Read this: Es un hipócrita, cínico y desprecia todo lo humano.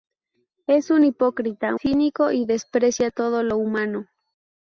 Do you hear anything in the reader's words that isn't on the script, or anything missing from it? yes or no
no